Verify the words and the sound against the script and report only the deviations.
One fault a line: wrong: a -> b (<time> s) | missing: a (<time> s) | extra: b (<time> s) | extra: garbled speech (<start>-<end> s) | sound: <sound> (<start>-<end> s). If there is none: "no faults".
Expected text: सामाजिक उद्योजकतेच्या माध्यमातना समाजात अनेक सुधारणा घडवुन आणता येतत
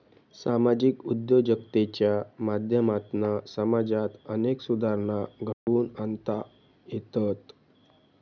sound: dropout (5.5-5.7 s)